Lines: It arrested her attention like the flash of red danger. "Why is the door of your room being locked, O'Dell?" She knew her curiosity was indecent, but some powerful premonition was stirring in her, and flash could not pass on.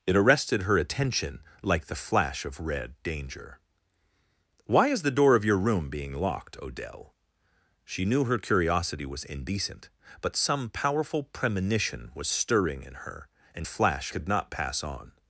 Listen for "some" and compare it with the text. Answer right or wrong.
right